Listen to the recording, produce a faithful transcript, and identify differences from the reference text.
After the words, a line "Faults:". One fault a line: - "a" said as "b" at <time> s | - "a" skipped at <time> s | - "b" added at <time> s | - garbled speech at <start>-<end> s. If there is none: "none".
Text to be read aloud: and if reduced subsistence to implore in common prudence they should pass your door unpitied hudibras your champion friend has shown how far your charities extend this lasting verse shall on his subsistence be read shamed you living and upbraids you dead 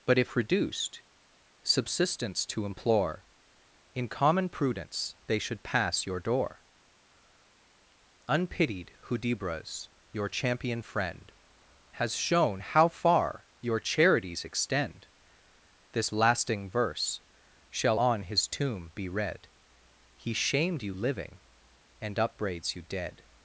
but if reduced subsistence to implore in common prudence they should pass your door unpitied hudibras your champion friend has shown how far your charities extend this lasting verse shall on his tomb be read he shamed you living and upbraids you dead
Faults:
- "and" said as "but" at 0.1 s
- "subsistence" said as "tomb" at 18.5 s
- "he" added at 20.1 s